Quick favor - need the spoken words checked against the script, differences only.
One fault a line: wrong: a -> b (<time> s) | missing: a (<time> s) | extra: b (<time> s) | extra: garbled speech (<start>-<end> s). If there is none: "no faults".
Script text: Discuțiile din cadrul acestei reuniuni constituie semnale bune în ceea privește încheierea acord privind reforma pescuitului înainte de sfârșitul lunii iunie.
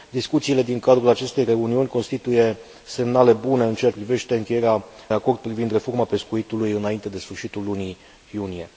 no faults